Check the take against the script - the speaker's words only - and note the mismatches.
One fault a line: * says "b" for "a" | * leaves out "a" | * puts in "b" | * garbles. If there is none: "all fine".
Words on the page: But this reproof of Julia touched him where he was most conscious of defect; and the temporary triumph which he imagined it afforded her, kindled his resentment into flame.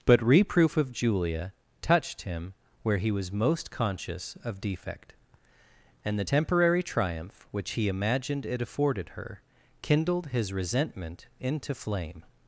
* leaves out "this"